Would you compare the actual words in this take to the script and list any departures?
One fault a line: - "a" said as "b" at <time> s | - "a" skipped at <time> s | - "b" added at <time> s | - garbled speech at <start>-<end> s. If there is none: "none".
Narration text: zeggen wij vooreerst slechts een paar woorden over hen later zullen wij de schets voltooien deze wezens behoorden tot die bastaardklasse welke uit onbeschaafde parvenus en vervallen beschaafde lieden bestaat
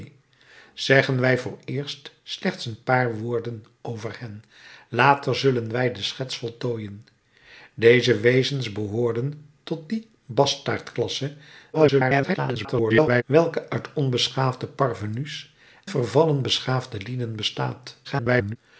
- garbled speech at 11.7-13.2 s
- "en" skipped at 15.5 s
- garbled speech at 18.0-18.6 s